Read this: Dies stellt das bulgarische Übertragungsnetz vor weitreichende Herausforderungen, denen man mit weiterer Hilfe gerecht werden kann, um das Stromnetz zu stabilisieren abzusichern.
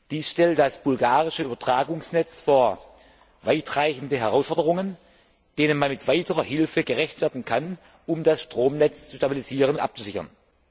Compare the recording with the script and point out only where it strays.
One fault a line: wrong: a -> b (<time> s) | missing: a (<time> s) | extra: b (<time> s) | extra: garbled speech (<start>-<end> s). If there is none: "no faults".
no faults